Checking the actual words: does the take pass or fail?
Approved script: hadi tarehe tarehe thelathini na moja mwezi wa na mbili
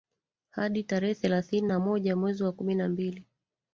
fail